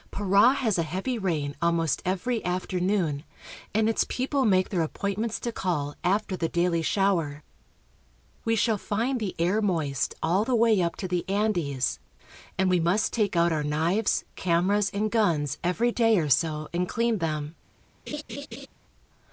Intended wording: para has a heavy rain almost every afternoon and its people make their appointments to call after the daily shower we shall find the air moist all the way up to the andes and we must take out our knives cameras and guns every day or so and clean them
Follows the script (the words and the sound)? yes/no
no